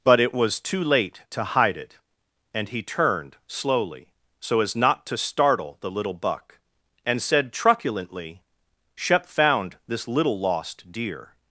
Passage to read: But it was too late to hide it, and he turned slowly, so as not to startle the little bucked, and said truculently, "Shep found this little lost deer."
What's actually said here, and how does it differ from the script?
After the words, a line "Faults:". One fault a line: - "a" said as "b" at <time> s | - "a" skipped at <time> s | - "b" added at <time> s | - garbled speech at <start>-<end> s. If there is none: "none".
But it was too late to hide it, and he turned slowly, so as not to startle the little buck, and said truculently, "Shep found this little lost deer."
Faults:
- "bucked" said as "buck" at 6.1 s